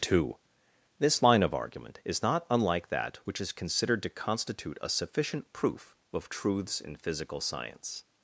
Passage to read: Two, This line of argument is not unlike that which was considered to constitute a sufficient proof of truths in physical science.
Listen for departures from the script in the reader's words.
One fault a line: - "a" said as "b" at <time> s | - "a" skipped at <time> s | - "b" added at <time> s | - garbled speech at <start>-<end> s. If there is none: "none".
- "was" said as "is" at 3.4 s